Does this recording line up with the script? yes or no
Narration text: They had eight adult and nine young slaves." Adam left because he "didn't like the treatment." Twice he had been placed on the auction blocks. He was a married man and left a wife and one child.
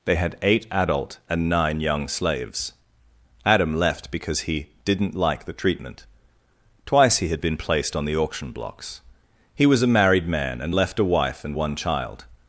yes